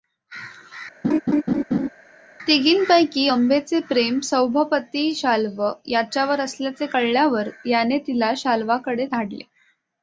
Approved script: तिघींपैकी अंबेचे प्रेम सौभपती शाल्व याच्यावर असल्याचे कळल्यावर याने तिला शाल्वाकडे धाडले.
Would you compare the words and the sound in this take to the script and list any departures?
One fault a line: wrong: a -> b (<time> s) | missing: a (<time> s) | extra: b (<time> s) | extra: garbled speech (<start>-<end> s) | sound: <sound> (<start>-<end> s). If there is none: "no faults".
sound: laugh (1.0-1.9 s)